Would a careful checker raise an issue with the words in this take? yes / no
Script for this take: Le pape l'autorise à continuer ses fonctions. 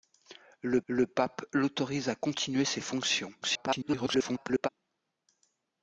yes